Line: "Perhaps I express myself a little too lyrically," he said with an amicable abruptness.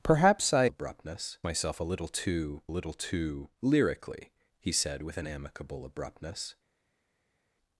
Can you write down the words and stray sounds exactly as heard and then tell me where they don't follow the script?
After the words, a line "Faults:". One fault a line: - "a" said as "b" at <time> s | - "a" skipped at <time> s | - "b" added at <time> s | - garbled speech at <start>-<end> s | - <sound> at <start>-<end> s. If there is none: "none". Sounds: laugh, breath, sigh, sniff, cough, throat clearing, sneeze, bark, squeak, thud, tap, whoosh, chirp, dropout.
"Perhaps I abruptness myself a little too little too lyrically," he said with an amicable abruptness.
Faults:
- "express" said as "abruptness" at 0.7 s
- "little too" added at 2.7 s